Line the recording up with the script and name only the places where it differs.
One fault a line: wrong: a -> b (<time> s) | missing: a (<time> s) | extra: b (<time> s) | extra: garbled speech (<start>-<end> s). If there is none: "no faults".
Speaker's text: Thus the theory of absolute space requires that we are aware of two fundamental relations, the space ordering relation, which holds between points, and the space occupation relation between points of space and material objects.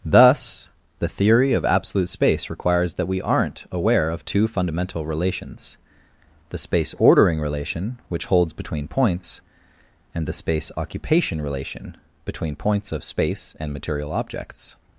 wrong: are -> aren't (3.2 s)